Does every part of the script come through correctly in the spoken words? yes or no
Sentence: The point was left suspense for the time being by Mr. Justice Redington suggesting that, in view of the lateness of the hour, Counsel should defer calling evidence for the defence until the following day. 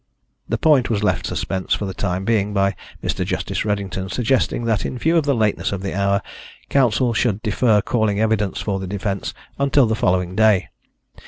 yes